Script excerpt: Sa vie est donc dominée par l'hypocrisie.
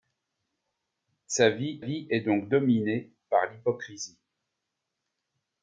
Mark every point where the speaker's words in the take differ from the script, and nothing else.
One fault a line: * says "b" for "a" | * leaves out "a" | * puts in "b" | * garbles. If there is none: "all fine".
* puts in "vie"